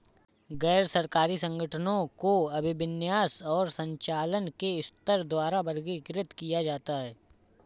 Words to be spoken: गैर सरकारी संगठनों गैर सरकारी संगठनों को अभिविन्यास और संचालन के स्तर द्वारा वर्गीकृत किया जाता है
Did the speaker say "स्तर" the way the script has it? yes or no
yes